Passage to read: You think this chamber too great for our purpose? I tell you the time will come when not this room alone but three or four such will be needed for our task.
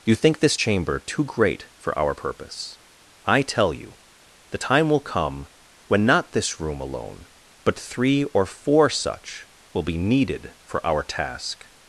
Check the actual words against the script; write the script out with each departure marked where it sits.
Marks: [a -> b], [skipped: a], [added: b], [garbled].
You think this chamber too great for our purpose? I tell you the time will come when not this room alone but three or four such will be needed for our task.